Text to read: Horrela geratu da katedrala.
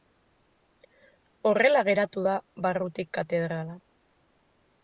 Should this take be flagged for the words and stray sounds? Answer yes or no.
yes